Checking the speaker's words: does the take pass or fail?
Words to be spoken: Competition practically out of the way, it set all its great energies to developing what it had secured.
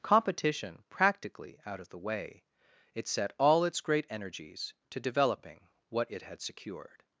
pass